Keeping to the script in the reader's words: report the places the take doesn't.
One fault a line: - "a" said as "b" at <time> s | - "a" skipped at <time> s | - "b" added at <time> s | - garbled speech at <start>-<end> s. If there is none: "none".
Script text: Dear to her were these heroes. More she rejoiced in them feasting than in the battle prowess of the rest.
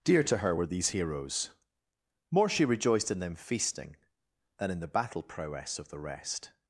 none